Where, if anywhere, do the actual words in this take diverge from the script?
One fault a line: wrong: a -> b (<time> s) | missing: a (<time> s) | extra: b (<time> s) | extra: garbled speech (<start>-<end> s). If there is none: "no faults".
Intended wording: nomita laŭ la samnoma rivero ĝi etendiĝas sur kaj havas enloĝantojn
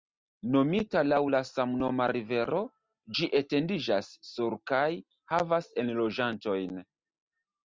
no faults